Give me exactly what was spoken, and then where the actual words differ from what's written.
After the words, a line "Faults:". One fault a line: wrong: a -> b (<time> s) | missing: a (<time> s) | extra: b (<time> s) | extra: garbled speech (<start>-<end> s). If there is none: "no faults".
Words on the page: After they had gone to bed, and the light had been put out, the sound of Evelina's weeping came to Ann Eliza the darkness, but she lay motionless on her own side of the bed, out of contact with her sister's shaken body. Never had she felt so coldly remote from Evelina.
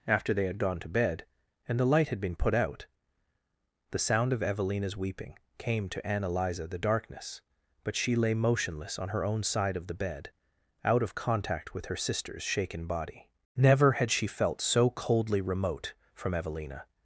After they had gone to bed, and the light had been put out, the sound of Evelina's weeping came to Ann Eliza the darkness, but she lay motionless on her own side of the bed, out of contact with her sister's shaken body. Never had she felt so coldly remote from Evelina.
Faults:
no faults